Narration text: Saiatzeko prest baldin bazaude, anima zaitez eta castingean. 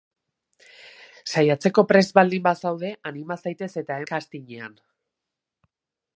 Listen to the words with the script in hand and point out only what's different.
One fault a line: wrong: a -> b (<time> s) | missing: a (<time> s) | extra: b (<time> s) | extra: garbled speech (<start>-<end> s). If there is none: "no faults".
no faults